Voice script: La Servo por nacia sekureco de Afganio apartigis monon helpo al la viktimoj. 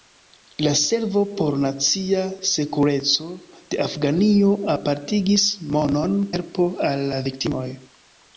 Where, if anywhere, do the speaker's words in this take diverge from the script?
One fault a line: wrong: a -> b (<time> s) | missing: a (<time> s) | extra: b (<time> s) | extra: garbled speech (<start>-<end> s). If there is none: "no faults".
no faults